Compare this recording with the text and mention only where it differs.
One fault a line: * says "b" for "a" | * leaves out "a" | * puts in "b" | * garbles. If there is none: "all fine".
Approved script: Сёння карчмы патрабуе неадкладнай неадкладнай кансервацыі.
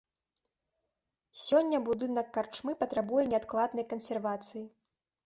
* puts in "будынак"
* leaves out "неадкладнай"